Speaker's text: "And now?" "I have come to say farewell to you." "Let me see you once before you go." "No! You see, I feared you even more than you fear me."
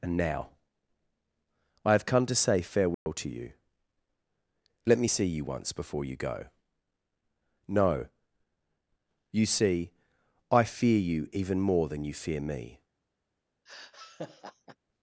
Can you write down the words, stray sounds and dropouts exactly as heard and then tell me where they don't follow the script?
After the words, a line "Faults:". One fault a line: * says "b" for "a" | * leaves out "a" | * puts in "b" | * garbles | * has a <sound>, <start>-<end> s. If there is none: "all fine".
"And now?" "I have come to say farewell to you." "Let me see you once before you go." "No! You see, I fear you even more than you fear me."
Faults:
* has a dropout, 2.9-3.1 s
* says "fear" for "feared"
* has a laugh, 13.7-14.8 s